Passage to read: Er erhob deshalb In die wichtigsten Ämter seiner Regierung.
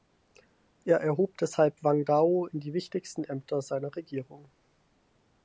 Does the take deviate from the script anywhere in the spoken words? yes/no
yes